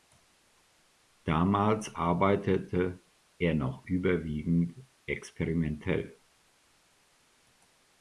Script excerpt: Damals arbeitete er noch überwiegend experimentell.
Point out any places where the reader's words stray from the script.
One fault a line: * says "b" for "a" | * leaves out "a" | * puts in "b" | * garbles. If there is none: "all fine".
all fine